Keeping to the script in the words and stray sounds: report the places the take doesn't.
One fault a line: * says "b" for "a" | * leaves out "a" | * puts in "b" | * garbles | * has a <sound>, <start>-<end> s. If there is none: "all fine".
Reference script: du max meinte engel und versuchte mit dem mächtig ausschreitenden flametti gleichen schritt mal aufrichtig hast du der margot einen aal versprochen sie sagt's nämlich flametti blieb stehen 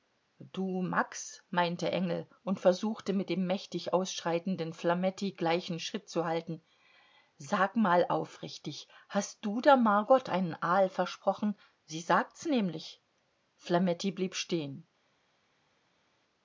* puts in "zu halten sag"